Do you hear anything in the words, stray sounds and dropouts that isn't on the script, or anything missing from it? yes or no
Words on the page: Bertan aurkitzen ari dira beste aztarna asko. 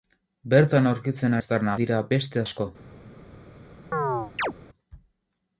yes